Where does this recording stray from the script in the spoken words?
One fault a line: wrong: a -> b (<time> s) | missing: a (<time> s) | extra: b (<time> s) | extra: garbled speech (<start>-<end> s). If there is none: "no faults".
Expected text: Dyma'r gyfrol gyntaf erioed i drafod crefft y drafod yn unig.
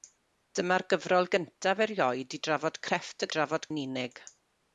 no faults